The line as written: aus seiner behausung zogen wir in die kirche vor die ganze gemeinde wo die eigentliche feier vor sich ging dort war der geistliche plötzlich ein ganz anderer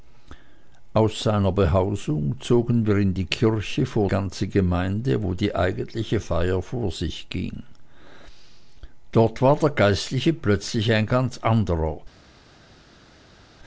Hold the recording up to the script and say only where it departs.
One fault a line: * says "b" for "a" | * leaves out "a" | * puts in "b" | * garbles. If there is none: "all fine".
* leaves out "die"